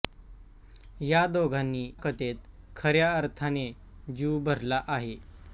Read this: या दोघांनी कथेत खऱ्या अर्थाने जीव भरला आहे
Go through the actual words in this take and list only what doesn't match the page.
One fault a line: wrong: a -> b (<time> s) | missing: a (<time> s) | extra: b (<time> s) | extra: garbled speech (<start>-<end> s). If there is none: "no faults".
no faults